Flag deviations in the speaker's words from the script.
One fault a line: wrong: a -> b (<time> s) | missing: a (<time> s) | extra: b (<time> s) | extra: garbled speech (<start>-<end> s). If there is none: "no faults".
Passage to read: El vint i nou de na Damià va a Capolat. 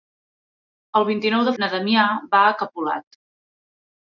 no faults